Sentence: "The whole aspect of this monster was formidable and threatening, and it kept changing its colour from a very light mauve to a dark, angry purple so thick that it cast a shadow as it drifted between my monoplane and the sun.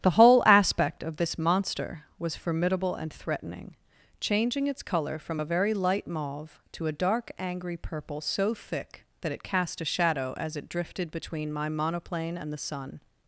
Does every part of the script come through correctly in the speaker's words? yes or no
no